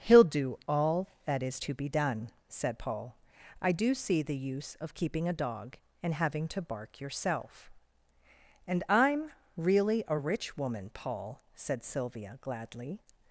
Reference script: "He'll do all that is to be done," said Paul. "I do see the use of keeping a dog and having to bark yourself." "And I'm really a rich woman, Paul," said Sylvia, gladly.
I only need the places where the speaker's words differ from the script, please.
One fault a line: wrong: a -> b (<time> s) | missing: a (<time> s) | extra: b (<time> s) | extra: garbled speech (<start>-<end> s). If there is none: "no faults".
no faults